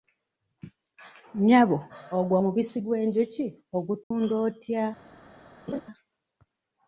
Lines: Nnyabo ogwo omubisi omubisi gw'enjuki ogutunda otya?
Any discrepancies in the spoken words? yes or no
yes